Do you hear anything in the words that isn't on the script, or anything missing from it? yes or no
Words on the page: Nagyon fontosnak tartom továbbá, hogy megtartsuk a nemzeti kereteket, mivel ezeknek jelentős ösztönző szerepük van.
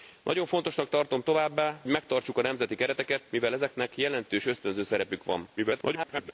yes